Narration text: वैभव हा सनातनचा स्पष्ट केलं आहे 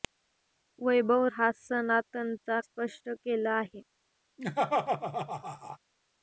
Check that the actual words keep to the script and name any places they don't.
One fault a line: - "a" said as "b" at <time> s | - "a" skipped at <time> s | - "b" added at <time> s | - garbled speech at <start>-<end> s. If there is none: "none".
none